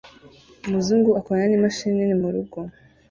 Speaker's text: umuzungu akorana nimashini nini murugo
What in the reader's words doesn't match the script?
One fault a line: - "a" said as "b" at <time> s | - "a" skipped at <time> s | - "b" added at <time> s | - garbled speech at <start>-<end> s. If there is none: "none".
none